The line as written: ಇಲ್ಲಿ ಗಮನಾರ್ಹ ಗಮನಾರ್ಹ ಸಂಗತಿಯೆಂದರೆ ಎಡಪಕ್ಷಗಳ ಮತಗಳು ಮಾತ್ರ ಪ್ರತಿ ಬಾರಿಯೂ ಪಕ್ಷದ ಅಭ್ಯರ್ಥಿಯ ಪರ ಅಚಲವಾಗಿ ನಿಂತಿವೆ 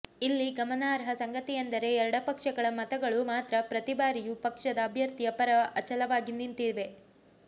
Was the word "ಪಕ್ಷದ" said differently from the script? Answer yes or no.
no